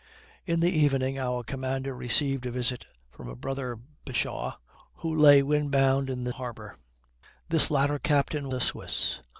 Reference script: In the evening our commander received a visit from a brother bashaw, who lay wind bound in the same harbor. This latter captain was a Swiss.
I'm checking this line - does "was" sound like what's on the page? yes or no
no